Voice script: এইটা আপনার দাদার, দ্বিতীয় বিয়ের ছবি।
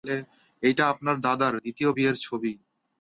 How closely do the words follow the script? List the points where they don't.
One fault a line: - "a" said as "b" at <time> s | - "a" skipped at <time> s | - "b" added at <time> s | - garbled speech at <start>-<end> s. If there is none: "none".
none